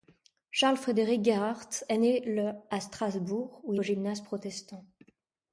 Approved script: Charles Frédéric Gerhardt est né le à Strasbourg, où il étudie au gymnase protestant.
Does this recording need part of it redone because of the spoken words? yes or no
yes